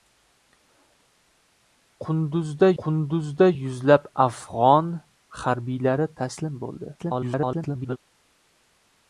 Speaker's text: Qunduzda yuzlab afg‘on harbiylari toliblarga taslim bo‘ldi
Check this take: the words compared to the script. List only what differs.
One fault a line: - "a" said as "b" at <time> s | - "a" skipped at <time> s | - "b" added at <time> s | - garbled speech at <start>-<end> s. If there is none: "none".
- "qunduzda" added at 2.8 s
- "toliblarga" skipped at 6.1 s
- garbled speech at 7.0-8.0 s